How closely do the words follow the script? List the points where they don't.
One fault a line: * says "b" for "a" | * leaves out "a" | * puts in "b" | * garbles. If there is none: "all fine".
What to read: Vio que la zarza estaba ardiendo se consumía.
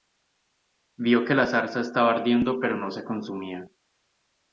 * puts in "pero no"